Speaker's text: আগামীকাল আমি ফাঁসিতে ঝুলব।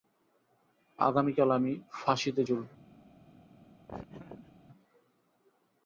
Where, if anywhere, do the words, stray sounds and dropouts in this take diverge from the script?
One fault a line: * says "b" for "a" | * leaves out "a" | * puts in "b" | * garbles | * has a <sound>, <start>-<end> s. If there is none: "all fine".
* has a laugh, 3.9-4.5 s